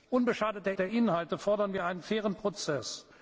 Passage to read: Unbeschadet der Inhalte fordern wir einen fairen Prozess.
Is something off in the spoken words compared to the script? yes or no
yes